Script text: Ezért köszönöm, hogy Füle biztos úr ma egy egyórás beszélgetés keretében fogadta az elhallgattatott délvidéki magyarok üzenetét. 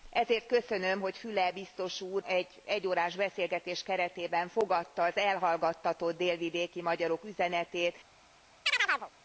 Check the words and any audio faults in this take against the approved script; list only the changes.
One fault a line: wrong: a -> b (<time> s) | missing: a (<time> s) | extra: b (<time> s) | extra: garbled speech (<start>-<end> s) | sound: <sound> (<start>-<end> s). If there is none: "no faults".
missing: ma (2.2 s)
sound: chirp (8.7-9.1 s)